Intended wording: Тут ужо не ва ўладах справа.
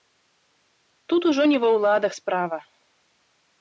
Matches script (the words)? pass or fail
pass